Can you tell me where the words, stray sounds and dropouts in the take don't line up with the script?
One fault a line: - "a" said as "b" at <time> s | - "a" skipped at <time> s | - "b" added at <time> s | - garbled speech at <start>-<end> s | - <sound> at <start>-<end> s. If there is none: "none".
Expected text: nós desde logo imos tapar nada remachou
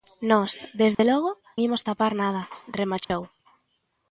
- dropout at 0.9-1.0 s
- dropout at 3.0-3.1 s